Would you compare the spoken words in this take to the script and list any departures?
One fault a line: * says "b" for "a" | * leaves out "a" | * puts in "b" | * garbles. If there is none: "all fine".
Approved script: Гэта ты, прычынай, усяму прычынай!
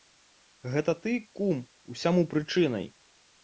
* says "кум" for "прычынай"